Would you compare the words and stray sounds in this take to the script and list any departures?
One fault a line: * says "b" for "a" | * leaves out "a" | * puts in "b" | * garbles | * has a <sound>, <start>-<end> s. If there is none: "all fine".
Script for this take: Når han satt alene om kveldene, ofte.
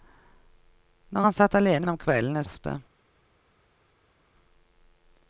all fine